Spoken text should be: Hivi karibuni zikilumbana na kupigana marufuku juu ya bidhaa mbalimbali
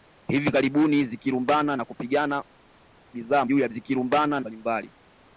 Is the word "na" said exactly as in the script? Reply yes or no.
yes